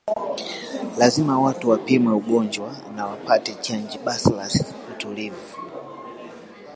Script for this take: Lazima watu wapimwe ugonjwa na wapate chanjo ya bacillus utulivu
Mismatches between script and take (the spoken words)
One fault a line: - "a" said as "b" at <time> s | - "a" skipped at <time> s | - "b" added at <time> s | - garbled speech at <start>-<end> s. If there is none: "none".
- "ya" skipped at 4.0 s